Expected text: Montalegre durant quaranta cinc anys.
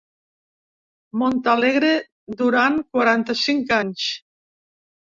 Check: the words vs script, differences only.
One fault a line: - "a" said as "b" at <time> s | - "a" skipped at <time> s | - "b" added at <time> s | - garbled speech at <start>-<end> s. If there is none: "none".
none